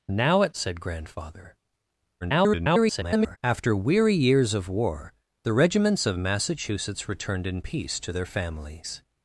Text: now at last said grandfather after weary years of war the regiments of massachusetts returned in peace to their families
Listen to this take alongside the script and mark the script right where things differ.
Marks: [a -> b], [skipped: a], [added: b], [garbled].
now at [skipped: last] said grandfather [garbled] after weary years of war the regiments of massachusetts returned in peace to their families